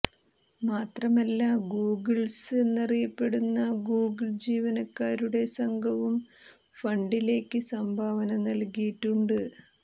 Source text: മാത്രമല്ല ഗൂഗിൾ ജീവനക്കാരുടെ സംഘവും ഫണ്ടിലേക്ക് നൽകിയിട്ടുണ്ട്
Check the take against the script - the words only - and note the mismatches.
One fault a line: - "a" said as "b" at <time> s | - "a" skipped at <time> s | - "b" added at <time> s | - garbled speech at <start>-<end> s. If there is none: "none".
- "ഗൂഗിൾസ് എന്നറിയപ്പെടുന്ന" added at 1.7 s
- "സംഭാവന" added at 7.7 s